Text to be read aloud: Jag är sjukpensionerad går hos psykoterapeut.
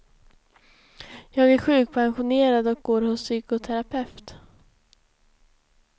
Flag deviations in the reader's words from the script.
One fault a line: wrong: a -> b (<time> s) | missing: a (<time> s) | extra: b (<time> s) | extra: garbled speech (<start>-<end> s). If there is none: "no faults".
extra: och (2.7 s)